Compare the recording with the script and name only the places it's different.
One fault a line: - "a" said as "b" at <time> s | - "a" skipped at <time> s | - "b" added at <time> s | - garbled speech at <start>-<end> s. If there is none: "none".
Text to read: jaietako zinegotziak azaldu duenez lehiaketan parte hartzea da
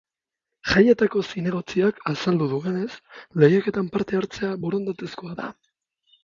- "borondatezkoa" added at 4.7 s